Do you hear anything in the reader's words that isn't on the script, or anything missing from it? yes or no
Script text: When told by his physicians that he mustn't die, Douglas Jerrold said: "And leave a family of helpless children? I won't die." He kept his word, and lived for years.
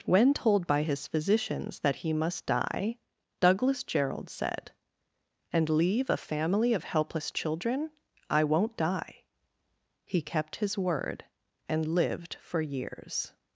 yes